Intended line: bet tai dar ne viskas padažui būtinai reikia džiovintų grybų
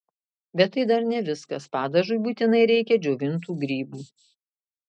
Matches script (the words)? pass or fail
pass